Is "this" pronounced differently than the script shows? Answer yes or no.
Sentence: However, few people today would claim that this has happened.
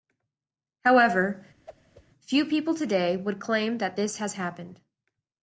no